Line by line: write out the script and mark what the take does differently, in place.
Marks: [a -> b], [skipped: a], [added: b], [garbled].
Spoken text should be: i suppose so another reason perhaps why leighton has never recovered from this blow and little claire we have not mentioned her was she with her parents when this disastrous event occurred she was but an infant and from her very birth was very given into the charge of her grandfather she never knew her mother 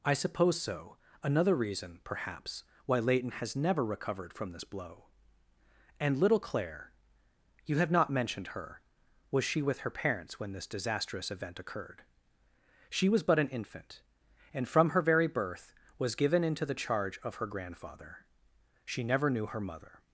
i suppose so another reason perhaps why leighton has never recovered from this blow and little claire [we -> you] have not mentioned her was she with her parents when this disastrous event occurred she was but an infant and from her very birth was [skipped: very] given into the charge of her grandfather she never knew her mother